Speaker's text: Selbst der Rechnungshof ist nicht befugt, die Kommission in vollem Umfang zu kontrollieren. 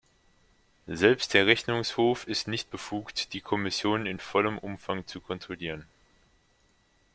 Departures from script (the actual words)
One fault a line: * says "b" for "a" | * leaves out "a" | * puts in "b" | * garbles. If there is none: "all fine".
all fine